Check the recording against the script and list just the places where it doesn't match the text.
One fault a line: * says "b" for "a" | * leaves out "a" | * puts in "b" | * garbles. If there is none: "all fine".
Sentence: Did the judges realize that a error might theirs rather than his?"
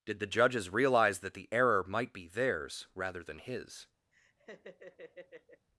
* says "the" for "a"
* puts in "be"